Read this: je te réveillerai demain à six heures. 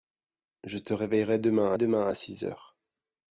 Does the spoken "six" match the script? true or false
true